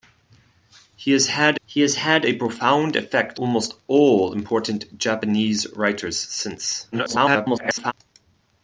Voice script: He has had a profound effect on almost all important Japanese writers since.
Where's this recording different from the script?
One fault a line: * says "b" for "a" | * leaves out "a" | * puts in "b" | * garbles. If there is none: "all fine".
* puts in "he has had"
* leaves out "on"
* garbles